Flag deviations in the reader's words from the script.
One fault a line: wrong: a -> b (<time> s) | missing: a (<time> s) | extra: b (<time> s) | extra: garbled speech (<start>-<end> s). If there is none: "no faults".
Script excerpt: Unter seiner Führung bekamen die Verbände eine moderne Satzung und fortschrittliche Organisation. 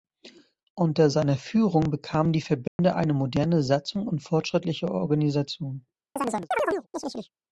no faults